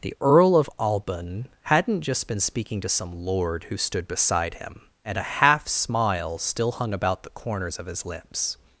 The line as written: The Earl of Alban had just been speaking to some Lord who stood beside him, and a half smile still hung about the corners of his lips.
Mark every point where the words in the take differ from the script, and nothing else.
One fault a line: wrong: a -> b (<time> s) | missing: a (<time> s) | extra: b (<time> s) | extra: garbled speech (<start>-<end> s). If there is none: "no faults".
wrong: had -> hadn't (1.6 s)